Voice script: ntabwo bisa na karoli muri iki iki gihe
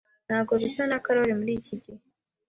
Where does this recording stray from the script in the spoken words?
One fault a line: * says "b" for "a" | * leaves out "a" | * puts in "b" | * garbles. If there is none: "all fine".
* leaves out "iki"